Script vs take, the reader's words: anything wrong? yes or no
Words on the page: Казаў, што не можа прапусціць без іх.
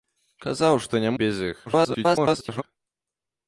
yes